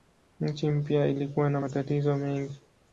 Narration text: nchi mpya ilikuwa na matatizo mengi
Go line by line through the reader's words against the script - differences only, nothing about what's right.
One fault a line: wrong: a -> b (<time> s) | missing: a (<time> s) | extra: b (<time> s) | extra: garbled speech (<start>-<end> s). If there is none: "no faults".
no faults